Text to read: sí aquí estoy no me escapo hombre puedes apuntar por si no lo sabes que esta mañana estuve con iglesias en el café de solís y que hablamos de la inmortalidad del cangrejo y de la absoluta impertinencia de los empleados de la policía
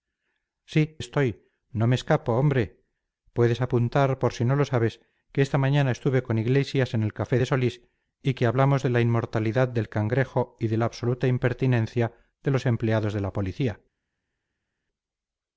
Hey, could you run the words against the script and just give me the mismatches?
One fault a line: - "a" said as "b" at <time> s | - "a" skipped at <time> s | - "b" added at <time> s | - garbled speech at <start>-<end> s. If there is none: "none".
- "aquí" skipped at 1.0 s